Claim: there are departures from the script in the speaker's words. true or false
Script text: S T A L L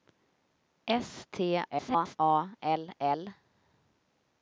true